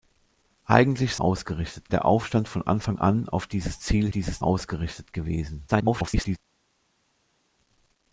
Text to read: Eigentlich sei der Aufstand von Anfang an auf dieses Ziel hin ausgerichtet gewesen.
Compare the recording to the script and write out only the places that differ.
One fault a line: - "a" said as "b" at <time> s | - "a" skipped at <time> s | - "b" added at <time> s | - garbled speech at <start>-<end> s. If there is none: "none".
- "sei" said as "ausgerichtet" at 1.1 s
- "hin" said as "dieses" at 4.1 s
- garbled speech at 5.7-6.4 s